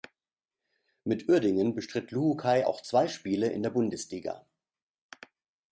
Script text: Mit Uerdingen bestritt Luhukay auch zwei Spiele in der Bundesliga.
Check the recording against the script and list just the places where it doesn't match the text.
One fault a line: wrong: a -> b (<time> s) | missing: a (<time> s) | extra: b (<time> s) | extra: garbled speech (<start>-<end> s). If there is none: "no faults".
no faults